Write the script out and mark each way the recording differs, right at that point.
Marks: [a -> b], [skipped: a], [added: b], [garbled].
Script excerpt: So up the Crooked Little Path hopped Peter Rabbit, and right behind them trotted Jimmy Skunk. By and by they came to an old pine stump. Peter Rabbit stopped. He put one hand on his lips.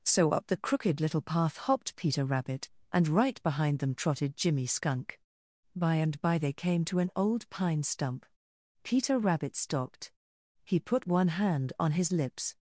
So up the Crooked Little Path hopped Peter Rabbit, and right behind them trotted Jimmy Skunk. By and by they came to an old pine stump. Peter Rabbit stopped. He put one hand on his lips.